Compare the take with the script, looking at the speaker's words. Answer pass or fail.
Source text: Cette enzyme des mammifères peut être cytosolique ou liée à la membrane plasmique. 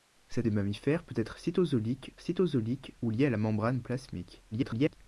fail